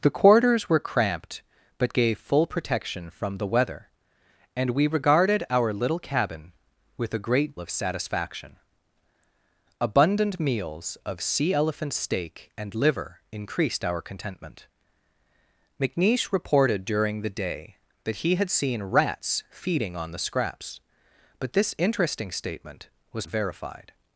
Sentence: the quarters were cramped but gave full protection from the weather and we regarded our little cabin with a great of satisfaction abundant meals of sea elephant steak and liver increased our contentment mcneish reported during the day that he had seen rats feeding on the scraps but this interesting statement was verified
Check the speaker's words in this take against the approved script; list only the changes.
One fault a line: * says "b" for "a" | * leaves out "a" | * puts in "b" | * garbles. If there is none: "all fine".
all fine